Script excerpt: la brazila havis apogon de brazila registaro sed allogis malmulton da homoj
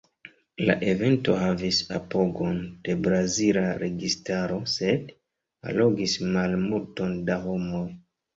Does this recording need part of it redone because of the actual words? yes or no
yes